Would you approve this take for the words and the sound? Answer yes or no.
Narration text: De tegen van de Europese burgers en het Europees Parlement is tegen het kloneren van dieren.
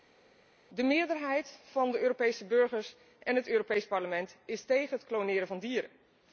no